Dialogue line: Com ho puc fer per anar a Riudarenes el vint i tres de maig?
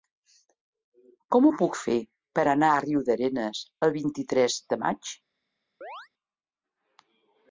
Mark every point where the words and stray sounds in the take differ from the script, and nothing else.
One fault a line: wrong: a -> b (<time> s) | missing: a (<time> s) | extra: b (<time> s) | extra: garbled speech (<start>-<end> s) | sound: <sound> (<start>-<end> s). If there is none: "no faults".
sound: chirp (5.8-6.1 s)